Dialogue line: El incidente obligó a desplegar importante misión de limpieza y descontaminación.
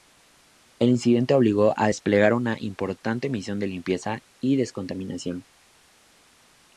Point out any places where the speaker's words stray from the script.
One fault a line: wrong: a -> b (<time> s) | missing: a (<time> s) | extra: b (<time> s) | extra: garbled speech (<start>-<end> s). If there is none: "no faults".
extra: una (2.3 s)